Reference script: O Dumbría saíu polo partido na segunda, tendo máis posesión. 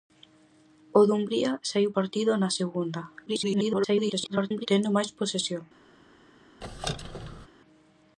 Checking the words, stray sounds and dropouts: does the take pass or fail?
fail